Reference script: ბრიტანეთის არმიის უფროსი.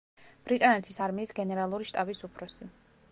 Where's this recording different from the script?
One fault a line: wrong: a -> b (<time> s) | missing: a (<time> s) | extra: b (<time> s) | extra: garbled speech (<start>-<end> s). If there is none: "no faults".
extra: გენერალური შტაბის (1.4 s)